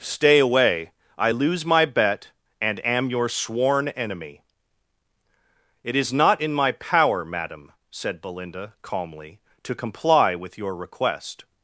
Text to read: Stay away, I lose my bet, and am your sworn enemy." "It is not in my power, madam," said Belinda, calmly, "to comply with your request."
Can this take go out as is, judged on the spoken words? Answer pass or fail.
pass